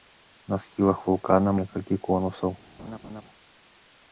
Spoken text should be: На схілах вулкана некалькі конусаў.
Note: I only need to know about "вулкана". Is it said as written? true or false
true